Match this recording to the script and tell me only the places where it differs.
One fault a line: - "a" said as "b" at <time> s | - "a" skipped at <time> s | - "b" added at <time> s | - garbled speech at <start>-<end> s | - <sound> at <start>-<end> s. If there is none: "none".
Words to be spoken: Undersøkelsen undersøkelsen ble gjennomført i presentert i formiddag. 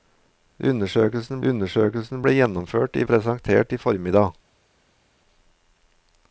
none